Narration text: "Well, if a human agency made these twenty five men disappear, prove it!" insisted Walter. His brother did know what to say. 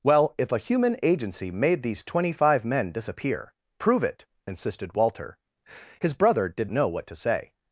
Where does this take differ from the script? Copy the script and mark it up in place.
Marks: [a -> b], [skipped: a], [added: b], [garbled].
"Well, if a human agency made these twenty five men disappear, prove it!" insisted Walter. His brother did know what to say.